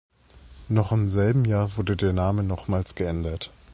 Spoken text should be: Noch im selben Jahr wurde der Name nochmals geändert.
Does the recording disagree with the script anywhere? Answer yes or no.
no